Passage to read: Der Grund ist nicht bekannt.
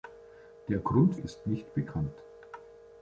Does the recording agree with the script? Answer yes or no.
yes